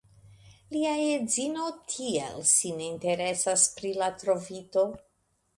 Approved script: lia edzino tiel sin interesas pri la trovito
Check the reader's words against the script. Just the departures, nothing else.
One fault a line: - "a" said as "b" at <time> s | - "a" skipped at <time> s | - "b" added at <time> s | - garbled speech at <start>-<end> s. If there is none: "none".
none